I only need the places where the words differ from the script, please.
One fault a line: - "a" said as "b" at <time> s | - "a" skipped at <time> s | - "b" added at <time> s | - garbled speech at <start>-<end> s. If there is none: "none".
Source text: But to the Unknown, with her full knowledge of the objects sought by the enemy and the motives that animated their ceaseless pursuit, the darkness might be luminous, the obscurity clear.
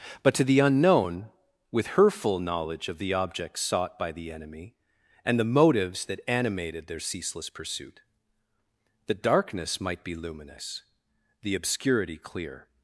none